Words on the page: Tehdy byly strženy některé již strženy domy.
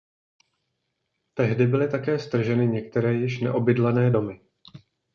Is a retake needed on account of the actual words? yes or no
yes